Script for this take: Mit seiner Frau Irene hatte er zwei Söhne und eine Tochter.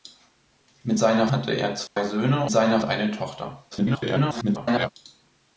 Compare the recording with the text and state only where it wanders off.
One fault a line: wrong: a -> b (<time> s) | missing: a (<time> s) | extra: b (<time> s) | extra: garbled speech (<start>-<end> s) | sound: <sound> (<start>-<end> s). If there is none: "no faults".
missing: Frau Irene (1.3 s)
sound: dropout (1.9-2.0 s)
wrong: und -> seiner (2.5 s)
extra: garbled speech (3.7-4.9 s)